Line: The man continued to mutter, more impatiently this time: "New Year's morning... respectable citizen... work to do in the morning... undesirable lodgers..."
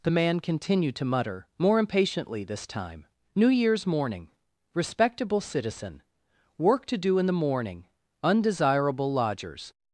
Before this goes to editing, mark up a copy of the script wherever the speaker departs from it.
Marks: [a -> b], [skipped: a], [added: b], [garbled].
The man continued to mutter, more impatiently this time: "New Year's morning... respectable citizen... work to do in the morning... undesirable lodgers..."